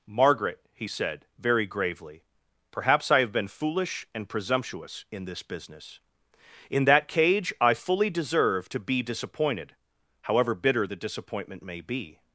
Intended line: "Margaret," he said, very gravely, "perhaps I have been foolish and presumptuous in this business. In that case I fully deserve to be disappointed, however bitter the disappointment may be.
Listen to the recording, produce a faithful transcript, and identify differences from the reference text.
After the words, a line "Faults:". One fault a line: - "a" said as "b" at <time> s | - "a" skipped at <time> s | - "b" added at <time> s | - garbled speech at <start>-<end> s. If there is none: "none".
"Margaret," he said, very gravely, "perhaps I have been foolish and presumptuous in this business. In that cage I fully deserve to be disappointed, however bitter the disappointment may be.
Faults:
- "case" said as "cage" at 7.1 s